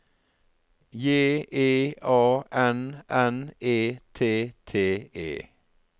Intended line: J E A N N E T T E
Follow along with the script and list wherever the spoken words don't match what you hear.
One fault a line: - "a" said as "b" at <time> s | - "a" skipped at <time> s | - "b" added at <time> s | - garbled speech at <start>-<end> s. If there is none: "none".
none